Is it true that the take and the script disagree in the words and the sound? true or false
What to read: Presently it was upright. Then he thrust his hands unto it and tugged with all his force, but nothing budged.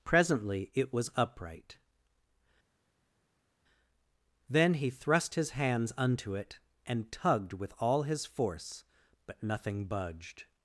false